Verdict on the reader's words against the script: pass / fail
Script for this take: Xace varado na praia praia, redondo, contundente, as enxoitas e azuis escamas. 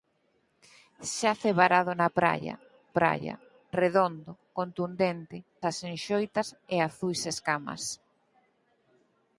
pass